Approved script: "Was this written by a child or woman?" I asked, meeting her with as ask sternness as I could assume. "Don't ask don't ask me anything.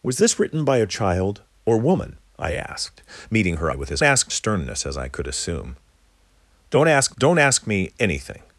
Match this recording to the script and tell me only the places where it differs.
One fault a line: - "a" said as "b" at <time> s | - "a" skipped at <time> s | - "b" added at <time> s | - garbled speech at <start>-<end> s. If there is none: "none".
none